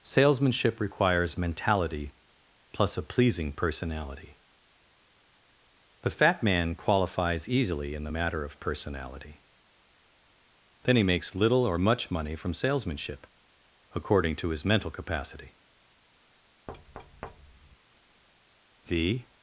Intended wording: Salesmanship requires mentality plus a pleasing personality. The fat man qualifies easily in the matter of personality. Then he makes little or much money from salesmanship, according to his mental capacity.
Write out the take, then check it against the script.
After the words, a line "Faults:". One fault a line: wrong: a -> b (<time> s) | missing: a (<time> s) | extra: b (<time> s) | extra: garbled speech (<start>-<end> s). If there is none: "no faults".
Salesmanship requires mentality plus a pleasing personality. The fat man qualifies easily in the matter of personality. Then he makes little or much money from salesmanship, according to his mental capacity. The
Faults:
extra: The (18.9 s)